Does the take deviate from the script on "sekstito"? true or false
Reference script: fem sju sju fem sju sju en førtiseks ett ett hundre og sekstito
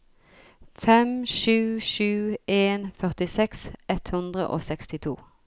false